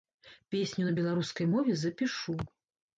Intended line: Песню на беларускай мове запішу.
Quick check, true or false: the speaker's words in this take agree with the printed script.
true